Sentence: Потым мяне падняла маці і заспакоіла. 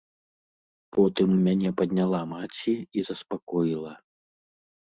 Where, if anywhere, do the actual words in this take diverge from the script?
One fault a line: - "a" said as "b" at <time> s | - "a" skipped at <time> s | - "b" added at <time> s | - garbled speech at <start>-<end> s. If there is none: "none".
none